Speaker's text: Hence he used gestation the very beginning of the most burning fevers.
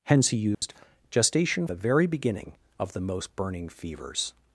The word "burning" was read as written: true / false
true